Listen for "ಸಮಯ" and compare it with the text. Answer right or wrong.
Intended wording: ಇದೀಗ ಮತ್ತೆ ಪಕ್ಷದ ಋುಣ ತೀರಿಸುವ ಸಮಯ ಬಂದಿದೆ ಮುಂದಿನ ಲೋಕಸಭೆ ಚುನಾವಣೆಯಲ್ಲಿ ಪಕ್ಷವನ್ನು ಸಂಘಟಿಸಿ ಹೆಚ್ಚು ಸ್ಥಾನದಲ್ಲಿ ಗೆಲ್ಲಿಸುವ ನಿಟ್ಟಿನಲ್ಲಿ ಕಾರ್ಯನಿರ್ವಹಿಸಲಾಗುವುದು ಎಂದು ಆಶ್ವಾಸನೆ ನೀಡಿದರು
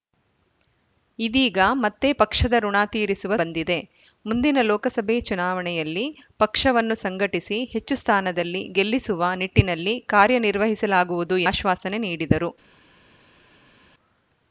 wrong